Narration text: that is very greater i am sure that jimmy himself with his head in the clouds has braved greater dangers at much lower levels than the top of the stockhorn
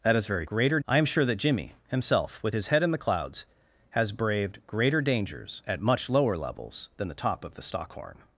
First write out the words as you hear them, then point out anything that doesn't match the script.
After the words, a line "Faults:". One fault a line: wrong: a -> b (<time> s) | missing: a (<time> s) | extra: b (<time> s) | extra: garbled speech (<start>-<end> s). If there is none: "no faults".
that is very greater i am sure that jimmy himself with his head in the clouds has braved greater dangers at much lower levels than the top of the stockhorn
Faults:
no faults